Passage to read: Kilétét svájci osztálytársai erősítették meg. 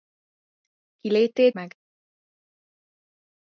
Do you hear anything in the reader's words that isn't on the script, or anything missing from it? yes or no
yes